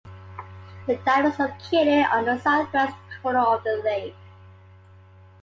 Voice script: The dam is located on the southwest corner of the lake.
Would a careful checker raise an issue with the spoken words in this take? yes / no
no